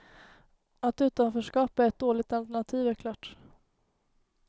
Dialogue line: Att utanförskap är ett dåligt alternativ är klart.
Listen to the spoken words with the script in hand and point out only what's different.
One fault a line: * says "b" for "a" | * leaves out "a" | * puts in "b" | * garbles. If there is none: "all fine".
all fine